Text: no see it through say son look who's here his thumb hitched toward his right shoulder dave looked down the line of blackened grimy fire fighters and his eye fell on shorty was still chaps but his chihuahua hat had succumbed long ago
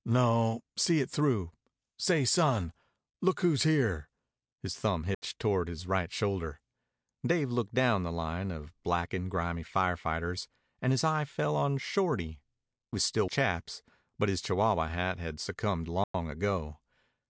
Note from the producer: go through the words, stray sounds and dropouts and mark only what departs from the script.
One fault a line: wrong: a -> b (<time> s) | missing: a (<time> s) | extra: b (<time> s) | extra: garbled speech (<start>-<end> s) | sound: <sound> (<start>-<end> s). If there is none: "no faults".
sound: dropout (5.1-5.2 s)
sound: dropout (16.0-16.1 s)